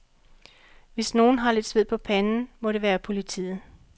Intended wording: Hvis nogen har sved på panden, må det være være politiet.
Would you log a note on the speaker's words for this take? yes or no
yes